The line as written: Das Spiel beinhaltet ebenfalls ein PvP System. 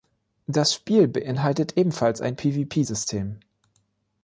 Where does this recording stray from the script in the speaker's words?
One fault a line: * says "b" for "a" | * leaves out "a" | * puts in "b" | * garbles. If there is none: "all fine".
all fine